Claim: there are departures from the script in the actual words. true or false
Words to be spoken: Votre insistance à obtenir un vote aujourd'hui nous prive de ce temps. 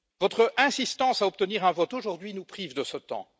false